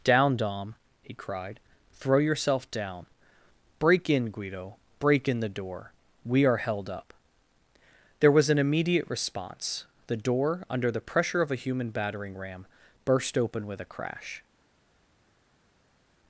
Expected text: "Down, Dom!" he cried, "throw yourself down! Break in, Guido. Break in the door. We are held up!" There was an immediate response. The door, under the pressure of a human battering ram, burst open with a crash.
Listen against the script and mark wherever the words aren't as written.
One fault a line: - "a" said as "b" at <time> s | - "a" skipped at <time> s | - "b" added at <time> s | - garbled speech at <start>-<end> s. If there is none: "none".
none